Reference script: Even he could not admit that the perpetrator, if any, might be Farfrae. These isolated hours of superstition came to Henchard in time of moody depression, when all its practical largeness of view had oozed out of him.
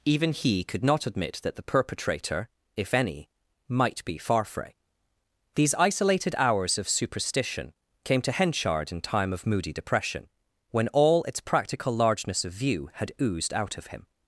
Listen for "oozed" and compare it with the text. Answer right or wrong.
right